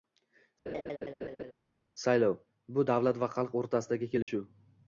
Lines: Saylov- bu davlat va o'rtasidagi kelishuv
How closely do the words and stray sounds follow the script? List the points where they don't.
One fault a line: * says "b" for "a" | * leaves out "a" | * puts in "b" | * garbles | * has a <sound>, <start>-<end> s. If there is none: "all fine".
* has a laugh, 0.7-1.5 s
* puts in "xalq"
* has a dropout, 4.2-4.3 s